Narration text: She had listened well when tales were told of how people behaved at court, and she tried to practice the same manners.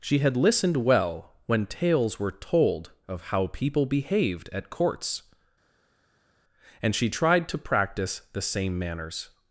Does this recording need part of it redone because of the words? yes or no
yes